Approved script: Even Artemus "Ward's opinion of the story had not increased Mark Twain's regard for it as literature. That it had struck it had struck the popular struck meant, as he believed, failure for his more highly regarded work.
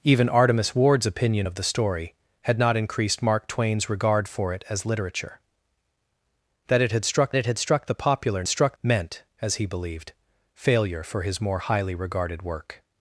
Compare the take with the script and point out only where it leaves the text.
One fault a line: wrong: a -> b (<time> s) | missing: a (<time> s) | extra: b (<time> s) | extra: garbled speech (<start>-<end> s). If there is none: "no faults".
no faults